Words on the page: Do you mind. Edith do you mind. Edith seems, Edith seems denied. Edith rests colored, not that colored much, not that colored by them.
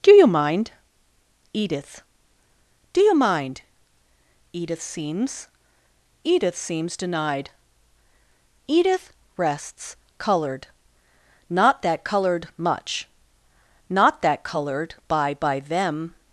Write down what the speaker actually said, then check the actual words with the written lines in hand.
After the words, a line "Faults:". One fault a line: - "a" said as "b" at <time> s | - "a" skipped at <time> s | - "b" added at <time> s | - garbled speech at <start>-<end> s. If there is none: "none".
Do you mind. Edith do you mind. Edith seems, Edith seems denied. Edith rests colored, not that colored much, not that colored by by them.
Faults:
- "by" added at 15.3 s